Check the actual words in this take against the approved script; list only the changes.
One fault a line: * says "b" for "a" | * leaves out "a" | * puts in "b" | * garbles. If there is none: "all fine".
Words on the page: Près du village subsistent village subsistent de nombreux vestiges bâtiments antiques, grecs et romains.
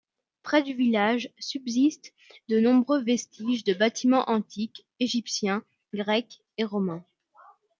* leaves out "village subsistent"
* puts in "de"
* puts in "égyptiens"